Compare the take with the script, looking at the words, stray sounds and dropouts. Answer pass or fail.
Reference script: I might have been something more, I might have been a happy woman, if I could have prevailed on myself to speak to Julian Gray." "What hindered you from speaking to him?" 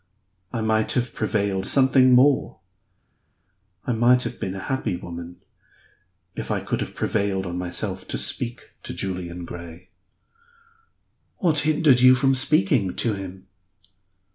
fail